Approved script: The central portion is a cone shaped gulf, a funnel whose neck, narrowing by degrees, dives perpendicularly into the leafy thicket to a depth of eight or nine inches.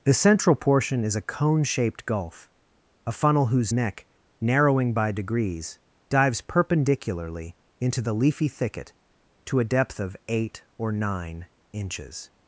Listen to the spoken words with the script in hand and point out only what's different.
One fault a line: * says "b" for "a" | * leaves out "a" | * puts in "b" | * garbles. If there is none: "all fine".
all fine